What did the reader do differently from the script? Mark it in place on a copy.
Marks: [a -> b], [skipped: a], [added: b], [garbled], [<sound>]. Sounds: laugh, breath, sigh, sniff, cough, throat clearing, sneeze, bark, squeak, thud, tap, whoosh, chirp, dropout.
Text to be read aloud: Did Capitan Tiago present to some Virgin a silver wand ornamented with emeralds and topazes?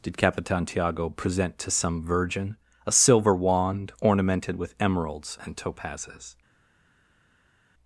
Did Capitan Tiago present to some Virgin a silver wand ornamented with emeralds and topazes?